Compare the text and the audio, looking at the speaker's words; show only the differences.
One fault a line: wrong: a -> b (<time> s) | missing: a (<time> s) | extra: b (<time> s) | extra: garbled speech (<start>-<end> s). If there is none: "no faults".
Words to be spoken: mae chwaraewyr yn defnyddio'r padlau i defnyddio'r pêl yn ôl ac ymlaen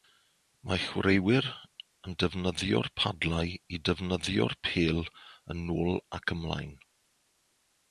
no faults